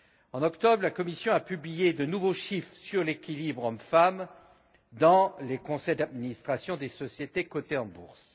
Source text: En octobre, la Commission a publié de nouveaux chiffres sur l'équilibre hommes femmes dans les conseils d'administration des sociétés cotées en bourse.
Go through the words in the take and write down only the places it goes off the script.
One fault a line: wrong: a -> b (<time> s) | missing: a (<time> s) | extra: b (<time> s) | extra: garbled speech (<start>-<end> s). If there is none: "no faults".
no faults